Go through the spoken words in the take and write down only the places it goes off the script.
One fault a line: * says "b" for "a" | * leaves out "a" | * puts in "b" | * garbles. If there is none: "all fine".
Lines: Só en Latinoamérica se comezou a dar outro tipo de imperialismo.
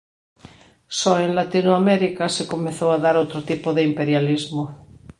all fine